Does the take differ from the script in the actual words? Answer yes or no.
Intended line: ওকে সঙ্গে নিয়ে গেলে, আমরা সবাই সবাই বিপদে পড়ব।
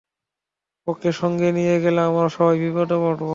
yes